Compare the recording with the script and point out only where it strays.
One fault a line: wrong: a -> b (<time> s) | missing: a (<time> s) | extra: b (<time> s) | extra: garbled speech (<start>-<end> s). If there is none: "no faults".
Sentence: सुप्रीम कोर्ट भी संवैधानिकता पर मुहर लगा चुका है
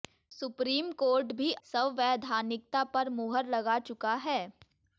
no faults